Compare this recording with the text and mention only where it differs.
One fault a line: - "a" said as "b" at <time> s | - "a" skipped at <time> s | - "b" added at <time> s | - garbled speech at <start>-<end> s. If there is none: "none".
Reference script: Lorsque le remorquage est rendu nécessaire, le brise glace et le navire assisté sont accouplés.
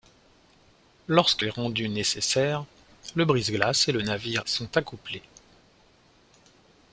- "le remorquage" skipped at 1.4 s
- "assisté" skipped at 4.4 s